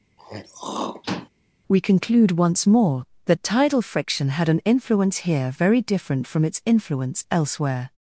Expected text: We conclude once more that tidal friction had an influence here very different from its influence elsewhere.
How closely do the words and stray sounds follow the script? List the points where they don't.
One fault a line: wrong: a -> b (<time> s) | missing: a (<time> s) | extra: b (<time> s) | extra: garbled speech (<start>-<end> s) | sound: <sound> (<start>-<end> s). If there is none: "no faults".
sound: throat clearing (0.2-1.3 s)